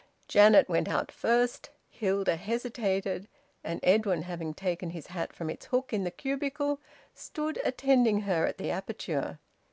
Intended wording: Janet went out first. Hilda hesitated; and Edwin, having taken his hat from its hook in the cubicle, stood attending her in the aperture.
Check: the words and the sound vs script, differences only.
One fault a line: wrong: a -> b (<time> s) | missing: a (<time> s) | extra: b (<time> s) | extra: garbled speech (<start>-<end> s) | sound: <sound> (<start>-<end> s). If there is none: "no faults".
wrong: in -> at (8.5 s)